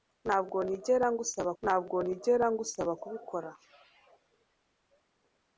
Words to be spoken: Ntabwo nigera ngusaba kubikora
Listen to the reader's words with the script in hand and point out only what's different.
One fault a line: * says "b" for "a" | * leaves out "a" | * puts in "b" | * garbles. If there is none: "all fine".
* puts in "ntabwo nigera ngusaba"